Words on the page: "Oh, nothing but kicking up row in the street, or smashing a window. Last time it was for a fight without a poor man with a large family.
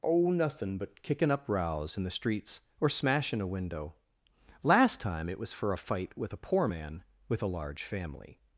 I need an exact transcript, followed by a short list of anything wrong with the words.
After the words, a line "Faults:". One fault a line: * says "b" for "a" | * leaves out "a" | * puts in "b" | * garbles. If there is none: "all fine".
"Oh, nothing but kicking up rows in the streets, or smashing a window. Last time it was for a fight with a poor man with a large family.
Faults:
* says "rows" for "row"
* says "streets" for "street"
* says "with" for "without"